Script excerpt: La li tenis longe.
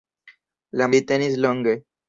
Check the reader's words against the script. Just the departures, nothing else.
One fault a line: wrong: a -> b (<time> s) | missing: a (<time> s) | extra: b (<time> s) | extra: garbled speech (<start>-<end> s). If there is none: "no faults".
no faults